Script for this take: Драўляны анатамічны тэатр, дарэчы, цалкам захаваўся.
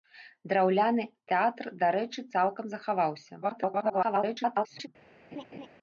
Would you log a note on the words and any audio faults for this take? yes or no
yes